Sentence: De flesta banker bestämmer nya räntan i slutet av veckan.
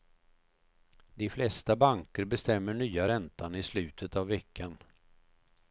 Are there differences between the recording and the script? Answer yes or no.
no